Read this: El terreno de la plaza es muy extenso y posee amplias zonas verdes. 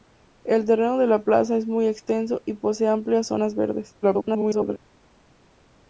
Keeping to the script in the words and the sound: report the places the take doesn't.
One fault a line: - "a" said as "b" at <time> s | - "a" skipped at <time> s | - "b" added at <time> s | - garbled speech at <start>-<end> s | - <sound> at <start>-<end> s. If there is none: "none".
- garbled speech at 4.0-4.8 s